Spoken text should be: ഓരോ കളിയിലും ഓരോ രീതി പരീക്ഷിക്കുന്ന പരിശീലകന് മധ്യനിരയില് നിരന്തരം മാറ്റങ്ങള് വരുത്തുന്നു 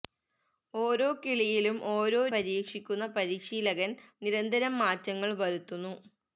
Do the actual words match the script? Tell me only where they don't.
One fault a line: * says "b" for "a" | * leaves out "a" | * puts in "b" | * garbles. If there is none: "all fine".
* leaves out "രീതി"
* leaves out "മധ്യനിരയില്"